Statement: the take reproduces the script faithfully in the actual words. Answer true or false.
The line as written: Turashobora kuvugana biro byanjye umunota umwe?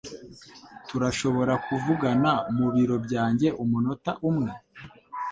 false